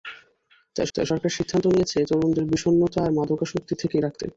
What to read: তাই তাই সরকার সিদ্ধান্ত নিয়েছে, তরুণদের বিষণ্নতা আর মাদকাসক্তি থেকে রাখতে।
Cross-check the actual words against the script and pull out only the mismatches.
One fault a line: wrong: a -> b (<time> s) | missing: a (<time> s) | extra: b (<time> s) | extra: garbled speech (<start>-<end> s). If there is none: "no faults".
no faults